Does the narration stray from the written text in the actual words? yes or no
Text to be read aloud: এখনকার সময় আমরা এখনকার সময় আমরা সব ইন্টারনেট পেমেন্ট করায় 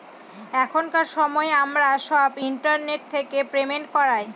yes